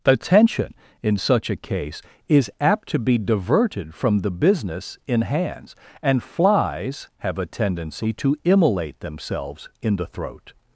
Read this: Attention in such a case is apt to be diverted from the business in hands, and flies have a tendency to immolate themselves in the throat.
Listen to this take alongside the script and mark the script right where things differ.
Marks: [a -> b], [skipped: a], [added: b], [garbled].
Attention in such a case is apt to be diverted from the business in hands, and flies have a tendency to immolate themselves in the throat.